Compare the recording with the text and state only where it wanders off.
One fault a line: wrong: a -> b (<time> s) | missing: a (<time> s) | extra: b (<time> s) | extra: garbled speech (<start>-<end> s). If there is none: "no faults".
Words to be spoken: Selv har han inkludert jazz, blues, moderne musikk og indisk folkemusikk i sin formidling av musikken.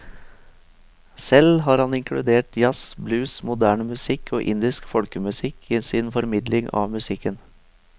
no faults